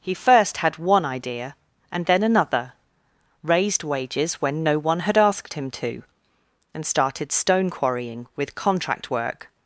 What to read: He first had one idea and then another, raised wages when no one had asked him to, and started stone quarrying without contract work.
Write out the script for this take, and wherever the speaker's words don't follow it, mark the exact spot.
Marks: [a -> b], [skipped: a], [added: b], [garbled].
He first had one idea and then another, raised wages when no one had asked him to, and started stone quarrying [without -> with] contract work.